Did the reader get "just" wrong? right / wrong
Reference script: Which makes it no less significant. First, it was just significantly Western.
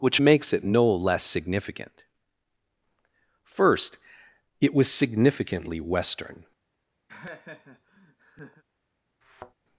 wrong